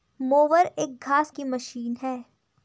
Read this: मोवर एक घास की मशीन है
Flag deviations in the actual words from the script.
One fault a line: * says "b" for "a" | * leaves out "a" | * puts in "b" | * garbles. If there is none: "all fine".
all fine